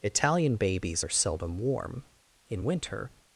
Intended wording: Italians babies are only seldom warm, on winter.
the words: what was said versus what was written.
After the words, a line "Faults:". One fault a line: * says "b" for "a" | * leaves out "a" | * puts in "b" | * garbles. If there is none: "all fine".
Italian babies are seldom warm, in winter.
Faults:
* says "Italian" for "Italians"
* leaves out "only"
* says "in" for "on"